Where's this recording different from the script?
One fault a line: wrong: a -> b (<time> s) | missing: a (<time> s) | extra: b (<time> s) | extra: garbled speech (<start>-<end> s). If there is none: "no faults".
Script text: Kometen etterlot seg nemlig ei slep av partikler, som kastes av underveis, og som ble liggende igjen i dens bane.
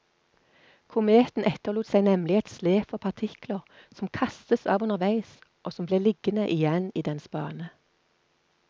wrong: ei -> et (2.4 s)